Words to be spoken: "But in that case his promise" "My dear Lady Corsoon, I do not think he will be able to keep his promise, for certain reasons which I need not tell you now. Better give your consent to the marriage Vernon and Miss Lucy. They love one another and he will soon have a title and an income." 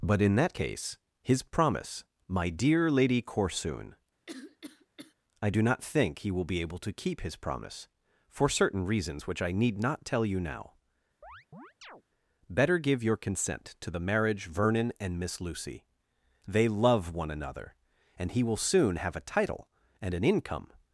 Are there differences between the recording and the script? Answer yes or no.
no